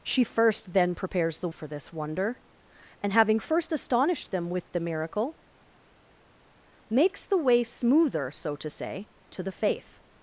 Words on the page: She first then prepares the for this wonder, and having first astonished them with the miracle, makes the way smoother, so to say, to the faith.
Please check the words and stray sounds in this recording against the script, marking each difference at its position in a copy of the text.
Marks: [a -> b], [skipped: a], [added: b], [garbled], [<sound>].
She first then prepares the for this wonder, and having first astonished them with the miracle, makes the way smoother, so to say, to the faith.